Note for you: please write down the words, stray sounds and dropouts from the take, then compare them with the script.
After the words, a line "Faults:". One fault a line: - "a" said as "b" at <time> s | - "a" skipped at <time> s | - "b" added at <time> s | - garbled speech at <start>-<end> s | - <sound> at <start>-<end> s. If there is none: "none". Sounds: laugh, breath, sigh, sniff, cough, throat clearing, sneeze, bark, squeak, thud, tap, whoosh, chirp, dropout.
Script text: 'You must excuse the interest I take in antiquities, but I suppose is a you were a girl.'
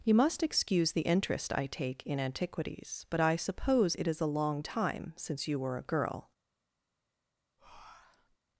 'You must excuse the interest I take in antiquities, but I suppose it is a long time since you were a girl.'
Faults:
- "it" added at 3.9 s
- "long time since" added at 4.3 s
- breath at 7.6-8.4 s